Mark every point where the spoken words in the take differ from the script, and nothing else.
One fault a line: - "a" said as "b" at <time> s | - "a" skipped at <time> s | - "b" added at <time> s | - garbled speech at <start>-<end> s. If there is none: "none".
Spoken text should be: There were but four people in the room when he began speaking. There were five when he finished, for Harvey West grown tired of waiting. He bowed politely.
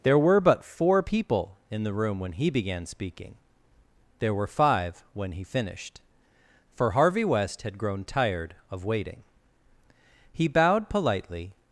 - "had" added at 7.6 s